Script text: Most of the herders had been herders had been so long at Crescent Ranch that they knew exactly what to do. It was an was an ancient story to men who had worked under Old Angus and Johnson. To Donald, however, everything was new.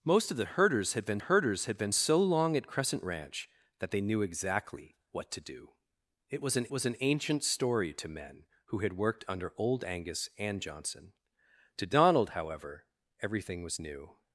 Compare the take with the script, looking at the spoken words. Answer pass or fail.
pass